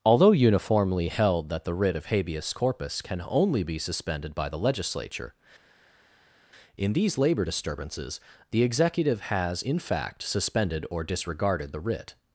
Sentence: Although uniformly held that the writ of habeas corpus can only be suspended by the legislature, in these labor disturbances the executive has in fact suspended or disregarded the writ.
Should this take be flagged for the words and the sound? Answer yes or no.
no